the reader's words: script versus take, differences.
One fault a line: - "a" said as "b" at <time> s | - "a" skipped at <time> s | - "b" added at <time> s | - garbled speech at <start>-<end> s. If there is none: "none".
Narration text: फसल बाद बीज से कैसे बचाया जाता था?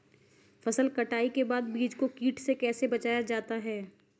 - "कटाई के" added at 0.9 s
- "को कीट" added at 1.9 s
- "था" said as "है" at 3.5 s